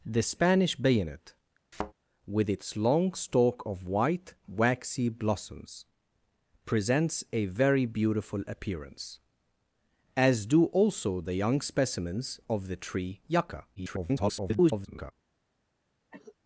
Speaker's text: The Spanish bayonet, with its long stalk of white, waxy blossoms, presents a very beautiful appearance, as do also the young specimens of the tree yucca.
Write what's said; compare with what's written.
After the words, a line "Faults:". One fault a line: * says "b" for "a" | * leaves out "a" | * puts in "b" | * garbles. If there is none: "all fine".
The Spanish bayonet, with its long stalk of white, waxy blossoms, presents a very beautiful appearance, as do also the young specimens of the tree yucca. [garbled]
Faults:
* garbles